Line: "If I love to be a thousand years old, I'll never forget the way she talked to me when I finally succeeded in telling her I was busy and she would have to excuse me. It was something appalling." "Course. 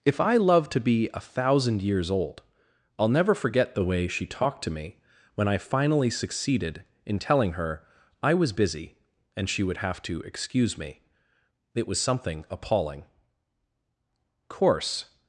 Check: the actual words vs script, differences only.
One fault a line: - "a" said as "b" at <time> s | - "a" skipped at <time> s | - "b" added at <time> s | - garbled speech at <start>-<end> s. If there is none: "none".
none